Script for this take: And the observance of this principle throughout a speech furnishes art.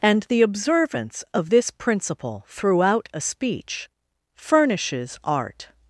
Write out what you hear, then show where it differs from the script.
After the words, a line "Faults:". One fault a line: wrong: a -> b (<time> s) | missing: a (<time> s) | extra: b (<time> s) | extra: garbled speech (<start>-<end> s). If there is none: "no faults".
And the observance of this principle throughout a speech furnishes art.
Faults:
no faults